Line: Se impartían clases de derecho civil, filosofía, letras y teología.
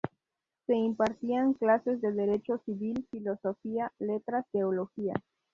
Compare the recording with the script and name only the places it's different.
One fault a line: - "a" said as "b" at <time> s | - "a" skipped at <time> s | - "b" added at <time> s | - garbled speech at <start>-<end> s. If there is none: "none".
- "y" skipped at 4.4 s